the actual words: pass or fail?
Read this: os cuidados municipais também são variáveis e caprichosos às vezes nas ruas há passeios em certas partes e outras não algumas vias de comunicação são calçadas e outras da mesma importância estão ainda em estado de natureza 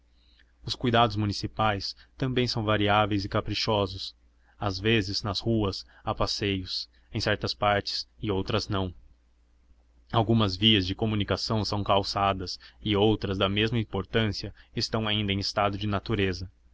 pass